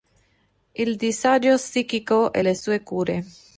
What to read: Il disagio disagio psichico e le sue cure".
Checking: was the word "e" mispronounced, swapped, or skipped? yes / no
no